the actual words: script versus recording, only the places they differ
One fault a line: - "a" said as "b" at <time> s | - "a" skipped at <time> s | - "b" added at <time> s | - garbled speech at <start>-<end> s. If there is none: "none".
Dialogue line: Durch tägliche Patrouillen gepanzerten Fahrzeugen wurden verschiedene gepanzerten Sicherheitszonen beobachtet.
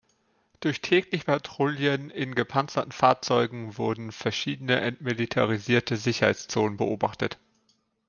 - "in" added at 2.1 s
- "gepanzerten" said as "entmilitarisierte" at 4.8 s